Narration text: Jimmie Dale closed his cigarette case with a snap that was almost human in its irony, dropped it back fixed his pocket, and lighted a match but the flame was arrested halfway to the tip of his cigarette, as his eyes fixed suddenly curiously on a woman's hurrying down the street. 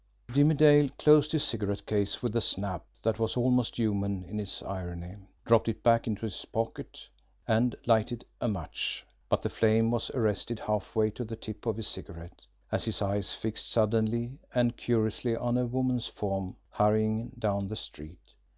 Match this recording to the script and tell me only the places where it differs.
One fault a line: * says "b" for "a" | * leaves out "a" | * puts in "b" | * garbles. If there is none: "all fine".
* says "into" for "fixed"
* puts in "and"
* puts in "form"